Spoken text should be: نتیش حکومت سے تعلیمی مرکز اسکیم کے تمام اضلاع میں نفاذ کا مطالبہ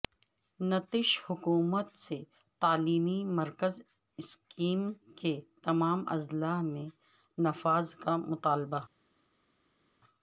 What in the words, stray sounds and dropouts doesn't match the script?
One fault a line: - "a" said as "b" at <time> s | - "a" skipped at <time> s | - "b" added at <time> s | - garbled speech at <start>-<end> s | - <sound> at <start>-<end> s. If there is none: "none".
none